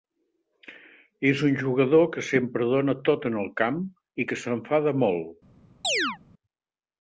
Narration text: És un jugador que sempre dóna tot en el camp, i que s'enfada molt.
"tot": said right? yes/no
yes